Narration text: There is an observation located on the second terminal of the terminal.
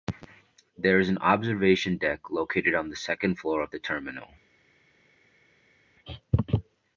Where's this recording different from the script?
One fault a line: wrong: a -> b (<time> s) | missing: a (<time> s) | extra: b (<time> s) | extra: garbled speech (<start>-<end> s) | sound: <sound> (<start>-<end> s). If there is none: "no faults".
extra: deck (2.0 s)
wrong: terminal -> floor (3.4 s)